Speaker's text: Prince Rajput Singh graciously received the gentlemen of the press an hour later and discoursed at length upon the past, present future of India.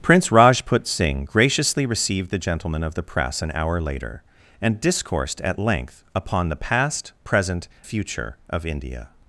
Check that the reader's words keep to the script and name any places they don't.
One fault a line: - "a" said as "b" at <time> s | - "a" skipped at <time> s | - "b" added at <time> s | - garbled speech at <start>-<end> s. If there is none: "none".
none